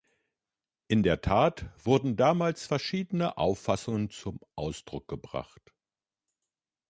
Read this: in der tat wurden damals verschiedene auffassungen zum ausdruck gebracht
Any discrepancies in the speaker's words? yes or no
no